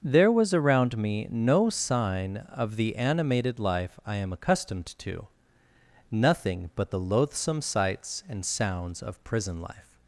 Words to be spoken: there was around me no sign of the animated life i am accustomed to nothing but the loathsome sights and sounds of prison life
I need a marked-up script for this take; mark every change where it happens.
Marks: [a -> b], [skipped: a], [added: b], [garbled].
there was around me no sign of the animated life i am accustomed to nothing but the loathsome sights and sounds of prison life